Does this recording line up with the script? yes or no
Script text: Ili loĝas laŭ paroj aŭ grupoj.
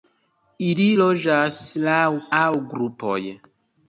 no